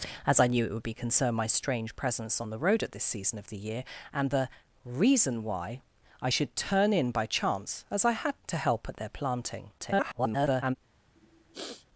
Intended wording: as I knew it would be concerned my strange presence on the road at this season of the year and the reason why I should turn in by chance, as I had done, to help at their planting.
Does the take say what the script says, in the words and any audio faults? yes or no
no